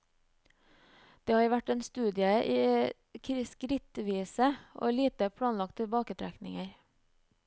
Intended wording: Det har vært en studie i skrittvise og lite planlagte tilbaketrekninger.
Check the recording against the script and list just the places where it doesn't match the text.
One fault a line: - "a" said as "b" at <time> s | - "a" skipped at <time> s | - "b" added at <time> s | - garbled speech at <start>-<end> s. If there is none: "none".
none